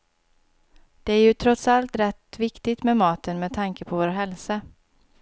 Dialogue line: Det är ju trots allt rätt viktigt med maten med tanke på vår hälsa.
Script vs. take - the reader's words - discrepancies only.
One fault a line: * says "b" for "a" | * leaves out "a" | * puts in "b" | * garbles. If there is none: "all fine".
all fine